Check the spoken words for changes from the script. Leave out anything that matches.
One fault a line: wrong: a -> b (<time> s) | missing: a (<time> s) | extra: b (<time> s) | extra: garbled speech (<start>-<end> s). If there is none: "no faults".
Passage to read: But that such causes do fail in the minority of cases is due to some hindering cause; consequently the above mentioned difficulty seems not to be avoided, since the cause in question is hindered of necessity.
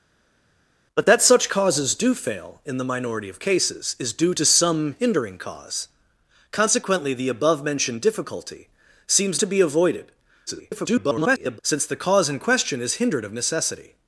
missing: not (9.4 s)
extra: garbled speech (10.5-11.6 s)